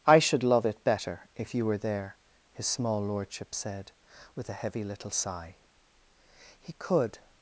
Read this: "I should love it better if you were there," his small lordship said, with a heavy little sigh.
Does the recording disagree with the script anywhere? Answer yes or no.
yes